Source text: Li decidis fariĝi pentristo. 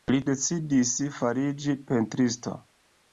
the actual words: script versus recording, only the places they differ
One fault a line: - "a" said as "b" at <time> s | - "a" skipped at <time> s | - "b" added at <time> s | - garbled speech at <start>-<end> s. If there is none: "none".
none